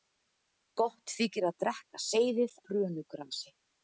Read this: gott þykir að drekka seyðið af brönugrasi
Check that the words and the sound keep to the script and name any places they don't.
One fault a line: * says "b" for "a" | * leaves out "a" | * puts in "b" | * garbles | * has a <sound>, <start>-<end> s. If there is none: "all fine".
* leaves out "af"